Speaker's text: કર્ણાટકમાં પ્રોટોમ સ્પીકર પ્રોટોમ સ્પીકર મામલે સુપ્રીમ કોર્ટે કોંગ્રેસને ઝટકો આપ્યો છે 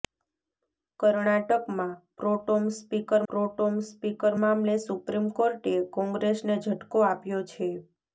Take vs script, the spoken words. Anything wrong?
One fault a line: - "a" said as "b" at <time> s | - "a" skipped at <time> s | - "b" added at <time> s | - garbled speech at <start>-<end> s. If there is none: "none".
none